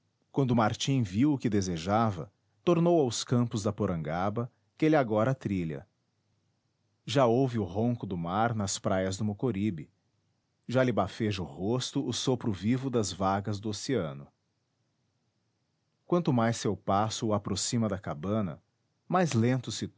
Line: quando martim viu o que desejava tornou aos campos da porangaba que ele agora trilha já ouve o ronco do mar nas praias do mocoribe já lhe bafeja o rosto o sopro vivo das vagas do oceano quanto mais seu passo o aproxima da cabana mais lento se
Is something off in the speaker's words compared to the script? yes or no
no